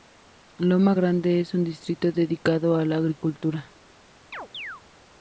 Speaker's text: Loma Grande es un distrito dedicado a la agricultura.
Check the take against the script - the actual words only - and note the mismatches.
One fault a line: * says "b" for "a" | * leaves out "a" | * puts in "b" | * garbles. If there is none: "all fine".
all fine